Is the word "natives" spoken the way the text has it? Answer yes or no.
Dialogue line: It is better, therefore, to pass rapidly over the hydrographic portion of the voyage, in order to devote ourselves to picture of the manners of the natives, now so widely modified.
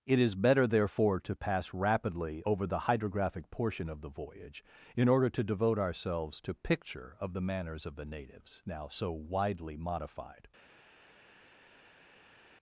yes